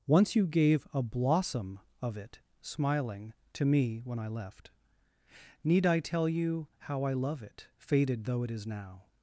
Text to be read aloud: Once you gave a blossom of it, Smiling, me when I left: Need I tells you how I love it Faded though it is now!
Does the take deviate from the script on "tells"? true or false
true